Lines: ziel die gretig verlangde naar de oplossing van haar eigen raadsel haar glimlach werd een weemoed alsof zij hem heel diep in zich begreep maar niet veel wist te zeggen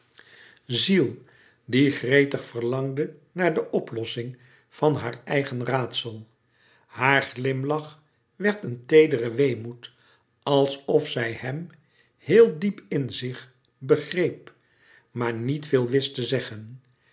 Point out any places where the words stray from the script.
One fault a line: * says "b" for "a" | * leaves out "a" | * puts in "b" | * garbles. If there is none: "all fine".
* puts in "teedere"